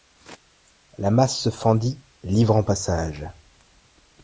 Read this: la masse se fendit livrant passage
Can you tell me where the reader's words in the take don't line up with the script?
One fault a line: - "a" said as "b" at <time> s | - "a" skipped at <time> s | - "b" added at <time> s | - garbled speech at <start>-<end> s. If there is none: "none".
none